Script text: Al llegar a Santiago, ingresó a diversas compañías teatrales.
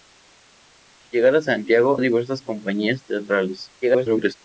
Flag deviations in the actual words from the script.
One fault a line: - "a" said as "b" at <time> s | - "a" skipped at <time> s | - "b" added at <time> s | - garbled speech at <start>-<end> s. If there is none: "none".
- "ingresó" skipped at 2.0 s
- garbled speech at 3.8-4.4 s